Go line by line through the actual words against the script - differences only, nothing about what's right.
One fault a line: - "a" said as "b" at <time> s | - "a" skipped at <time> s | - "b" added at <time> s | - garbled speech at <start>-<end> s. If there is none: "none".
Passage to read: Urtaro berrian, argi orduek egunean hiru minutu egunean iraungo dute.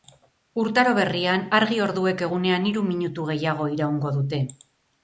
- "egunean" said as "gehiago" at 3.3 s